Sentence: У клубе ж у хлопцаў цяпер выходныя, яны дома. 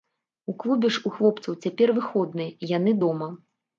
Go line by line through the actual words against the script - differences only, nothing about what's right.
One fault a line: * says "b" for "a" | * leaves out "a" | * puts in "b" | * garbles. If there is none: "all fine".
all fine